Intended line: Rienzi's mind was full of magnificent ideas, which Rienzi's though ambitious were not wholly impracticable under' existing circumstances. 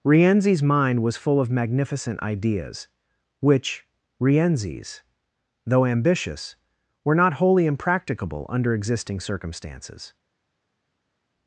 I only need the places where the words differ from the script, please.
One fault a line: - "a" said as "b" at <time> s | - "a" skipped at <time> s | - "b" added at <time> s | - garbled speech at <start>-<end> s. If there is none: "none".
none